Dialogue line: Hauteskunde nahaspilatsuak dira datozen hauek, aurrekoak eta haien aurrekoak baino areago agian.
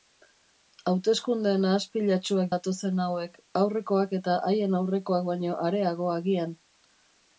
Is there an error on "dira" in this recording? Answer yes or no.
yes